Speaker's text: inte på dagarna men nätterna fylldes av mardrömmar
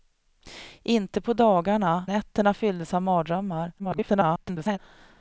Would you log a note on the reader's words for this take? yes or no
yes